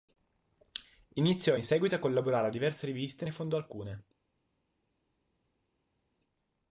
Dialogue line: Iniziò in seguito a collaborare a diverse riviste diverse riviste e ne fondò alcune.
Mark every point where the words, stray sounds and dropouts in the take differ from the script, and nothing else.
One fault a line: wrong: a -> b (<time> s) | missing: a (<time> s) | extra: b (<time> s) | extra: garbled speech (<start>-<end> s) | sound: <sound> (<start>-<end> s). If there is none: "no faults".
missing: diverse riviste (3.2 s)